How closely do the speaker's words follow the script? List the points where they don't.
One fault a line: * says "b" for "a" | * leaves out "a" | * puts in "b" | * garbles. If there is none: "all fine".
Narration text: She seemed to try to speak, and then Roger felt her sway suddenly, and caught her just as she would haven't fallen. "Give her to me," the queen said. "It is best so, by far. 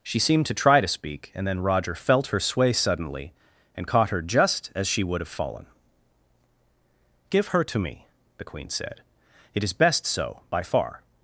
* says "have" for "haven't"